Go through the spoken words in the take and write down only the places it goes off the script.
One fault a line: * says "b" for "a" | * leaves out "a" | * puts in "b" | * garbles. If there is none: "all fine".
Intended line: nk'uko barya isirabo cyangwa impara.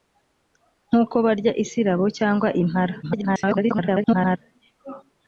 * garbles